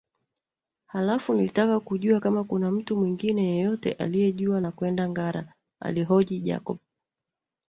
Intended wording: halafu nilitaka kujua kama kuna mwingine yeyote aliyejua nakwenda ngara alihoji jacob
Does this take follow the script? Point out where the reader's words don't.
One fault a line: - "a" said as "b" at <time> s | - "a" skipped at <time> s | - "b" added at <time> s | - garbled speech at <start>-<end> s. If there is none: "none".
- "mtu" added at 2.7 s